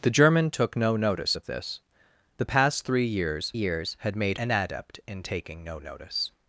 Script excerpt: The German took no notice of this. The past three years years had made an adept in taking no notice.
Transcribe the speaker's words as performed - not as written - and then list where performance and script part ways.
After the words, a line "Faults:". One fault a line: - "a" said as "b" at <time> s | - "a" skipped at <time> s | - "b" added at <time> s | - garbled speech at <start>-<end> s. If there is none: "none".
The German took no notice of this. The past three years years had made an adept in taking no notice.
Faults:
none